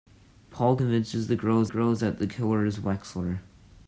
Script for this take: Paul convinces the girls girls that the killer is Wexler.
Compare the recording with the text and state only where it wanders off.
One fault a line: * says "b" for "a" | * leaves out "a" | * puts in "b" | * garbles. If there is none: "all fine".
all fine